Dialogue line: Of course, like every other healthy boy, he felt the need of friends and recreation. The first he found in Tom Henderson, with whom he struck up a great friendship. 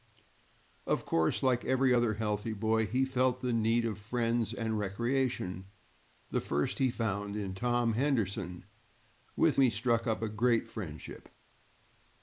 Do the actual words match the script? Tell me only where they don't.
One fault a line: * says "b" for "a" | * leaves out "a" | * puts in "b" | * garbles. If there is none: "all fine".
* leaves out "whom"